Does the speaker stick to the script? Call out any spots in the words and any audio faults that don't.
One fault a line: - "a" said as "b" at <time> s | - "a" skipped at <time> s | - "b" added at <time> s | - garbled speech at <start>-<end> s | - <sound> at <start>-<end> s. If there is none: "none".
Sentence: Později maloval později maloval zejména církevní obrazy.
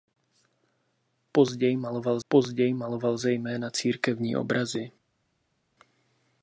none